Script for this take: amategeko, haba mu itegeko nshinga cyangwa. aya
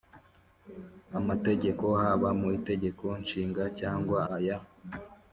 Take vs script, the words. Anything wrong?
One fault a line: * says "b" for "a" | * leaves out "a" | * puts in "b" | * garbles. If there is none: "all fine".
all fine